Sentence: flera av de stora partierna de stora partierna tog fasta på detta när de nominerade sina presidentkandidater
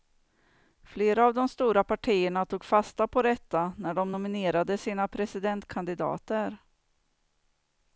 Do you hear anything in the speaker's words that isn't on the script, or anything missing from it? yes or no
yes